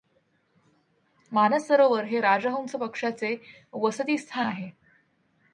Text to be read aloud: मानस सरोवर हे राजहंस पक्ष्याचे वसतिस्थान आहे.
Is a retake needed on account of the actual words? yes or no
no